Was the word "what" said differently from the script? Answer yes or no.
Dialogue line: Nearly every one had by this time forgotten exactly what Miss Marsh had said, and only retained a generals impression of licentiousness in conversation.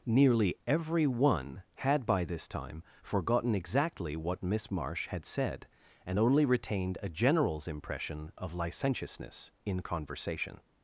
no